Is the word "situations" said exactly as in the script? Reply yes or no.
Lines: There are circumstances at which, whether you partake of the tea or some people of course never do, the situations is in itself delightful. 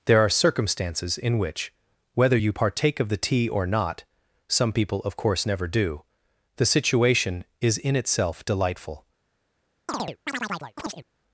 no